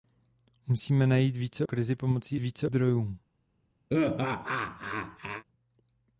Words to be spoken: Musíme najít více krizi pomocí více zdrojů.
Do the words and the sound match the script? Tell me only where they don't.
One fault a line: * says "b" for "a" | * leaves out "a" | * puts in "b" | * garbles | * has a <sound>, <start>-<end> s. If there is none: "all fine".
* has a laugh, 3.9-5.4 s